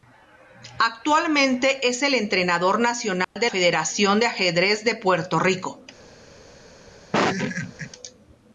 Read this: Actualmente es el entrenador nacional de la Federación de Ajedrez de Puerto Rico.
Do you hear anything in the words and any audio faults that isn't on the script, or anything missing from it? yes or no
yes